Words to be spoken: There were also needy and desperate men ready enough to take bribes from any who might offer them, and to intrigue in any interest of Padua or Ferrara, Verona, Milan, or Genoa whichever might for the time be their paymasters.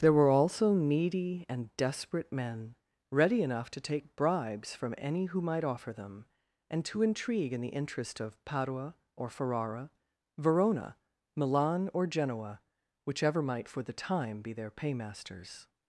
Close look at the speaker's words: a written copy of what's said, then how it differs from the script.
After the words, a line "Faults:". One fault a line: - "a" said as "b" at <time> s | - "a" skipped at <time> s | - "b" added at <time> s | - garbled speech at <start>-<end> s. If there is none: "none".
There were also needy and desperate men ready enough to take bribes from any who might offer them, and to intrigue in the interest of Padua or Ferrara, Verona, Milan, or Genoa whichever might for the time be their paymasters.
Faults:
- "any" said as "the" at 7.6 s